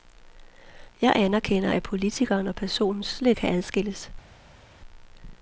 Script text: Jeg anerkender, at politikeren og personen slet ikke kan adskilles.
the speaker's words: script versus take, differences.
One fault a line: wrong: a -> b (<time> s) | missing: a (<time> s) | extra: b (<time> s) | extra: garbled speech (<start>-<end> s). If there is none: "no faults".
missing: ikke (3.4 s)